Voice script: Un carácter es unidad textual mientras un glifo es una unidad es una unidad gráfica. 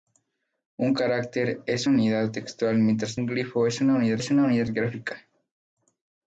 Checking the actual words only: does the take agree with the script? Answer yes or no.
yes